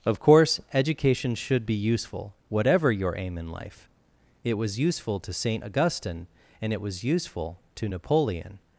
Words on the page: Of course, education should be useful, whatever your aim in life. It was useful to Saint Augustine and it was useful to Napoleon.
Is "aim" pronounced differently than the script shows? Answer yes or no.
no